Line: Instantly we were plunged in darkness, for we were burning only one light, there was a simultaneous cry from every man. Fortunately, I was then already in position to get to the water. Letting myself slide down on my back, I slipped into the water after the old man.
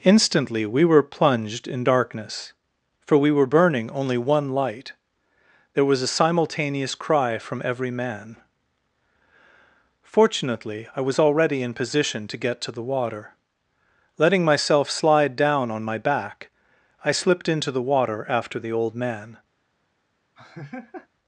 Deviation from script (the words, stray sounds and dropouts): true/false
true